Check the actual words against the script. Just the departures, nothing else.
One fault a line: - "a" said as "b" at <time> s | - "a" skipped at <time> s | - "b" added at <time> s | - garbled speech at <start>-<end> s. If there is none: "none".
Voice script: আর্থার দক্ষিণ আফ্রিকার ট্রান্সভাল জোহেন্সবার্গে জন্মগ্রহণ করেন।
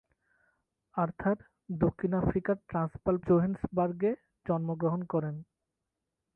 none